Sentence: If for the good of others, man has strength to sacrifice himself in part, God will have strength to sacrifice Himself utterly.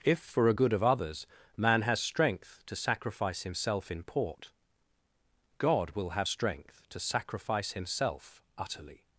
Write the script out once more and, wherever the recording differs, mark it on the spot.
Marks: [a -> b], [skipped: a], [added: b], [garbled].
If for [the -> a] good of others, man has strength to sacrifice himself in [part, -> port] God will have strength to sacrifice Himself utterly.